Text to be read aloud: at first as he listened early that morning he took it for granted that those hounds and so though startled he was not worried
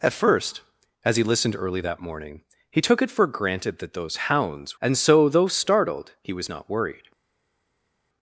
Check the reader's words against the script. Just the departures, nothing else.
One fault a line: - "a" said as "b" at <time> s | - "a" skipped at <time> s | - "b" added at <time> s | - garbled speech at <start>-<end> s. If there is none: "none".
none